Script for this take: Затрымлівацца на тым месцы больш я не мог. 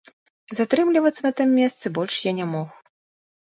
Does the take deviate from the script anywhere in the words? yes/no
no